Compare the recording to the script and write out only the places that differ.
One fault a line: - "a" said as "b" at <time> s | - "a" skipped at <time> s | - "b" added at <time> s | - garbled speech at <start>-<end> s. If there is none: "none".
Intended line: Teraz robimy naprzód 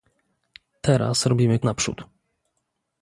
none